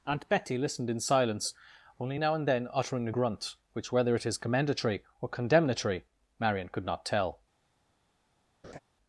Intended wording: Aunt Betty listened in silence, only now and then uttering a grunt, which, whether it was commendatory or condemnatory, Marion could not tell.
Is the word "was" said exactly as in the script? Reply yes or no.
no